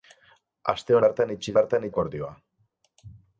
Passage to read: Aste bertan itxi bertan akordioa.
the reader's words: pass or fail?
pass